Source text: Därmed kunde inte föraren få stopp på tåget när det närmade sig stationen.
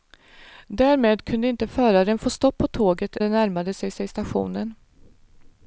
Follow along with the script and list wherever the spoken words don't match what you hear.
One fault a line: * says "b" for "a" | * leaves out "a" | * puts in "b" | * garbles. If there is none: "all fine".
* leaves out "när"
* puts in "sig"